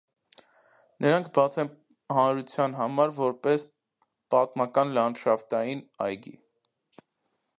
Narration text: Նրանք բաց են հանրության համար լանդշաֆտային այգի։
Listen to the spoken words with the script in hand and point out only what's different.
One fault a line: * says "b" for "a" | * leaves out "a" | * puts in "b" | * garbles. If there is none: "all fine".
* puts in "որպես պատմական"